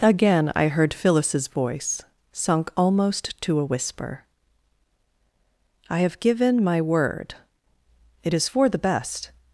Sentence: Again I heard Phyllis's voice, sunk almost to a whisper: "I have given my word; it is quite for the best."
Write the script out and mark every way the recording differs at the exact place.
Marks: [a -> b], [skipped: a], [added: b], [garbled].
Again I heard Phyllis's voice, sunk almost to a whisper: "I have given my word; it is [skipped: quite] for the best."